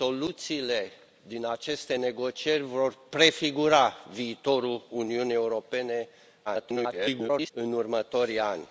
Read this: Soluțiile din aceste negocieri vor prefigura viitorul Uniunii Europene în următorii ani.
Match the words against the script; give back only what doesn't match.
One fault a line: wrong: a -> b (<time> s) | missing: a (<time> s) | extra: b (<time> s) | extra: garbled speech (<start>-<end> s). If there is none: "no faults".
extra: garbled speech (6.5-7.5 s)